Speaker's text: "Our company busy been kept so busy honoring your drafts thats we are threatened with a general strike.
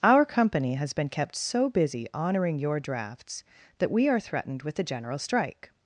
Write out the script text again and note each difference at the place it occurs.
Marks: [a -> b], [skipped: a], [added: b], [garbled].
"Our company [busy -> has] been kept so busy honoring your drafts [thats -> that] we are threatened with a general strike.